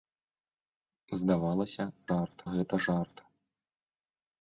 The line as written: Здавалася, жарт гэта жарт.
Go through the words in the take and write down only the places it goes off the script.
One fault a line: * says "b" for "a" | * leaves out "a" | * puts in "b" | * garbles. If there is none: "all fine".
all fine